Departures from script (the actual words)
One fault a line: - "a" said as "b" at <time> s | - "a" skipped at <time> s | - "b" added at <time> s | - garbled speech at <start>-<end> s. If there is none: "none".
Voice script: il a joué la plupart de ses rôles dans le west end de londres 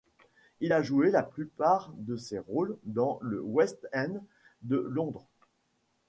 none